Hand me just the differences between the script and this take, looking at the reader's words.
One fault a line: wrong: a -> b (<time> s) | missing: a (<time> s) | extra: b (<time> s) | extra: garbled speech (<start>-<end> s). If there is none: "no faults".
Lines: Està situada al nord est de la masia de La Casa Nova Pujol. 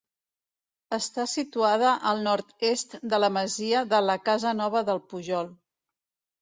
extra: del (4.9 s)